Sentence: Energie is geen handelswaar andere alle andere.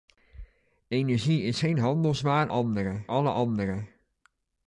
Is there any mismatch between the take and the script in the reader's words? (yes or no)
no